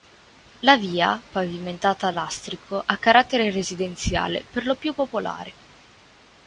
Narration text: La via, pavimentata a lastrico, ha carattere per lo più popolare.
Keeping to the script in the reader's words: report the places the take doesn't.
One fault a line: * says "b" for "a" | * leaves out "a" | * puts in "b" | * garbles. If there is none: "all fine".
* puts in "residenziale"